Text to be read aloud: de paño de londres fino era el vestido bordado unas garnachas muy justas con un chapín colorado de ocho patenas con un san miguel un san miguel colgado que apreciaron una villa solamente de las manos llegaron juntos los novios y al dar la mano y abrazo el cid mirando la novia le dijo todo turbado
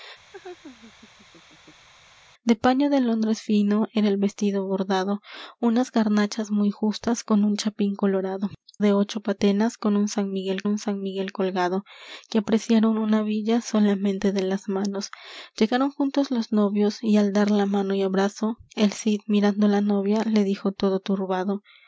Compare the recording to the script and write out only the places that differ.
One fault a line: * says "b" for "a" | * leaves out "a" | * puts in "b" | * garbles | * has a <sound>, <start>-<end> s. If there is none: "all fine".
* has a laugh, 0.3-1.9 s